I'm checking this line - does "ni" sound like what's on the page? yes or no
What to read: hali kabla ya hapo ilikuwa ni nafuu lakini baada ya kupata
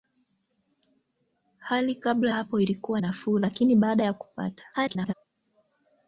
no